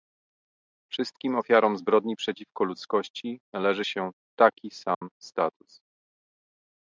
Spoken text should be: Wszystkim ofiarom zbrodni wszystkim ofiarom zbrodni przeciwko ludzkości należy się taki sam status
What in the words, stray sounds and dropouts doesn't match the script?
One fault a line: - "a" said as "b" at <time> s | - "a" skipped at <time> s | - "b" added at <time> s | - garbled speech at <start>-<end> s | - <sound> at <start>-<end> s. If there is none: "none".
- "wszystkim ofiarom zbrodni" skipped at 2.2 s
- dropout at 4.9-5.0 s